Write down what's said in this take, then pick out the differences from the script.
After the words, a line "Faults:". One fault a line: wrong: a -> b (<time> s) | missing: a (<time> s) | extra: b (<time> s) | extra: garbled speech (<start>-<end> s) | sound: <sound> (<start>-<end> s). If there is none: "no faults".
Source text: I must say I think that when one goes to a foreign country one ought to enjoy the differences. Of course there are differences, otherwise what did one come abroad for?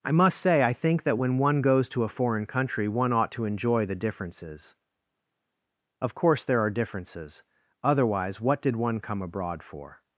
I must say I think that when one goes to a foreign country one ought to enjoy the differences. Of course there are differences, otherwise what did one come abroad for?
Faults:
no faults